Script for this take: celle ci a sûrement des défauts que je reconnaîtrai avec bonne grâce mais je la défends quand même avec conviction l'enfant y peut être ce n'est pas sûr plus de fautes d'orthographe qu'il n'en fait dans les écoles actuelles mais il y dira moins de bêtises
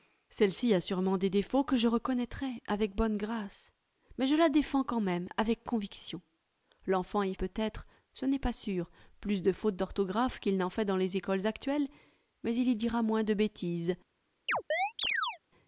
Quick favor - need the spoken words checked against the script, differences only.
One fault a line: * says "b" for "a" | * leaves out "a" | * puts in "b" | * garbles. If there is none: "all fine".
all fine